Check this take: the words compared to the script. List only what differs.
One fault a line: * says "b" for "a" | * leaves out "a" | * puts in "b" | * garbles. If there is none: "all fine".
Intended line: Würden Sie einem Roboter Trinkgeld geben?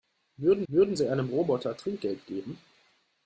* puts in "würden"